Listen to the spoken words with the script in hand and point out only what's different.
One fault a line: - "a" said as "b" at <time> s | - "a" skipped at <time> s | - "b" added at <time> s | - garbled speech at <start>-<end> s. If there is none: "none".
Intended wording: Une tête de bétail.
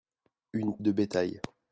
- "tête" skipped at 0.8 s